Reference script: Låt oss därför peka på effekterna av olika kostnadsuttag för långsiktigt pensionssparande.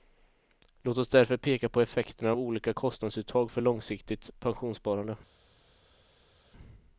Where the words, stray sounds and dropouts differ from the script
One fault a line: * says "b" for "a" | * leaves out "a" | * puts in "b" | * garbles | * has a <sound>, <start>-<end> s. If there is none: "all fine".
all fine